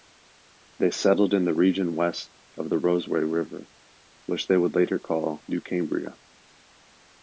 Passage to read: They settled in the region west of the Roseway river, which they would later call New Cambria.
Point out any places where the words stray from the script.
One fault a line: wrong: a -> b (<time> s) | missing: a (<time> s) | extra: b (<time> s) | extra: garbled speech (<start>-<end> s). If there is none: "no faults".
no faults